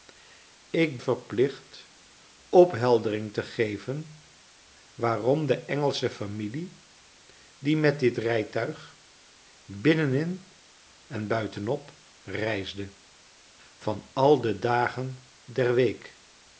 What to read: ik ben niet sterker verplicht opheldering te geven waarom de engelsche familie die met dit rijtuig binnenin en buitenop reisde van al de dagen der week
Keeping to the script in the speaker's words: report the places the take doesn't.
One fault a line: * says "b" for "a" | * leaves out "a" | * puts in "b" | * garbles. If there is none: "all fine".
* leaves out "ben niet sterker"